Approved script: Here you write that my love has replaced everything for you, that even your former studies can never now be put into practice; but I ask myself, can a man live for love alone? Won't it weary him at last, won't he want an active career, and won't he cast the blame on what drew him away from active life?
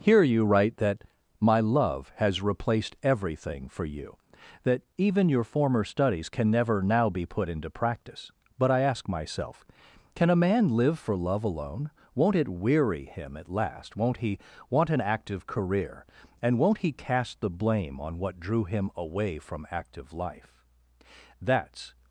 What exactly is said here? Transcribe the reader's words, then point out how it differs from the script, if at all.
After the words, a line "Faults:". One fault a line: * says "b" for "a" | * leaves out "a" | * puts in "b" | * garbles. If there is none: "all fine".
Here you write that my love has replaced everything for you, that even your former studies can never now be put into practice; but I ask myself, can a man live for love alone? Won't it weary him at last, won't he want an active career, and won't he cast the blame on what drew him away from active life? That's
Faults:
* puts in "That's"